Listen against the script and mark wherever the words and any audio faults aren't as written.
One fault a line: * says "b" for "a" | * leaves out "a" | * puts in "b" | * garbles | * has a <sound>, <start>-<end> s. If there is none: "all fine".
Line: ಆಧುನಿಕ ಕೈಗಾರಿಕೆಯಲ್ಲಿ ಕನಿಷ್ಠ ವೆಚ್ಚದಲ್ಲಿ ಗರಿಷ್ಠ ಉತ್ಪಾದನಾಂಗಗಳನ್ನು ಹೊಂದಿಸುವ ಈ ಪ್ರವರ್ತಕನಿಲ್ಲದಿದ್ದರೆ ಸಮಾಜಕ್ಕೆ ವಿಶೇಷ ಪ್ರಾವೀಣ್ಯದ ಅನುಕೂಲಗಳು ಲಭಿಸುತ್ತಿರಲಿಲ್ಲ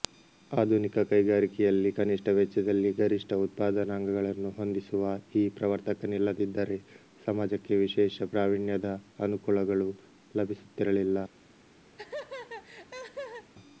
* has a laugh, 12.0-13.5 s